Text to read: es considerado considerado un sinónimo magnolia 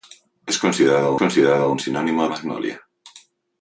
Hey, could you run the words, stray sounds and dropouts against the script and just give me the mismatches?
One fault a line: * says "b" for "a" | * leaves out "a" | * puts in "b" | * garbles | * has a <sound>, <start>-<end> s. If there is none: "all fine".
all fine